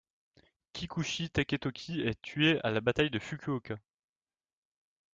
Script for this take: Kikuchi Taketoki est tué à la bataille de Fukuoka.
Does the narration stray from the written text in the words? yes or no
no